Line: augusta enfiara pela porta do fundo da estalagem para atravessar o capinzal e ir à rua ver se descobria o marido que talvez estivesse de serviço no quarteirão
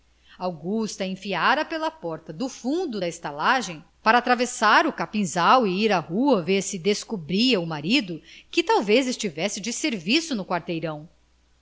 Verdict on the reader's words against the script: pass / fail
pass